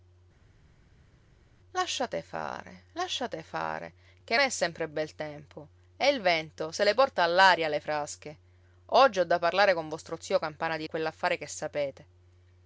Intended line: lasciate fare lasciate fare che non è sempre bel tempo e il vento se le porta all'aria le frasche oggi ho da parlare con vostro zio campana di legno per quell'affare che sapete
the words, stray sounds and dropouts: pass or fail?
fail